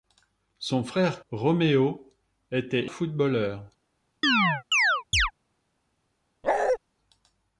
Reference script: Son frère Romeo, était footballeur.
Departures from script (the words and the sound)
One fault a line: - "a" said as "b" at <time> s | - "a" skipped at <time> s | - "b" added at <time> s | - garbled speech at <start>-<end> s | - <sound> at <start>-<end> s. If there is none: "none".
- chirp at 4.2-5.3 s
- bark at 6.4-6.8 s